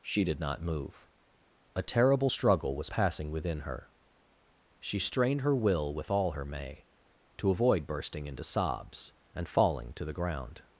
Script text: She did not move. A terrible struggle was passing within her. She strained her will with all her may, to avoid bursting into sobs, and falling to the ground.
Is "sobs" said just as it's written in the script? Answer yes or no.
yes